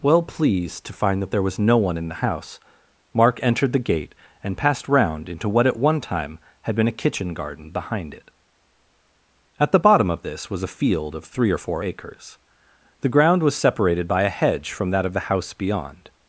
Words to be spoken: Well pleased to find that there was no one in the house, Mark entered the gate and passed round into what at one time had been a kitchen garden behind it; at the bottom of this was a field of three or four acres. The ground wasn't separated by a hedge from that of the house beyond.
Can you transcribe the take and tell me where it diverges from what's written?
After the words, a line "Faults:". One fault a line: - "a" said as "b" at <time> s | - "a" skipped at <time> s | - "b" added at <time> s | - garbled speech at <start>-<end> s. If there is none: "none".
Well pleased to find that there was no one in the house, Mark entered the gate and passed round into what at one time had been a kitchen garden behind it; at the bottom of this was a field of three or four acres. The ground was separated by a hedge from that of the house beyond.
Faults:
- "wasn't" said as "was" at 13.4 s